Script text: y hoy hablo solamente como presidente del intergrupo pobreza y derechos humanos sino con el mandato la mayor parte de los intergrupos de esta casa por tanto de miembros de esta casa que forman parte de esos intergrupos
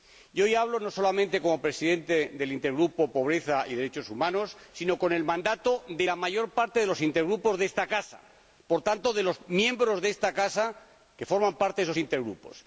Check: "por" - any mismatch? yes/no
no